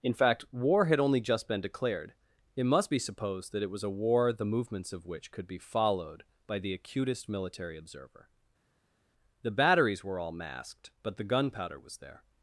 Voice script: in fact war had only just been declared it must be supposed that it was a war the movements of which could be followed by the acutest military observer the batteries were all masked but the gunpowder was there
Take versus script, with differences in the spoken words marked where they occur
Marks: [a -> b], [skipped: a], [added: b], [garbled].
in fact war had only just been declared it must be supposed that it was a war the movements of which could be followed by the acutest military observer the batteries were all masked but the gunpowder was there